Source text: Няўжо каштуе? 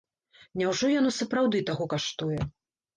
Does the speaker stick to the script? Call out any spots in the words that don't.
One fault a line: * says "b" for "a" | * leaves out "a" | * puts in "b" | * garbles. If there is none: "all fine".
* puts in "яно сапраўды таго"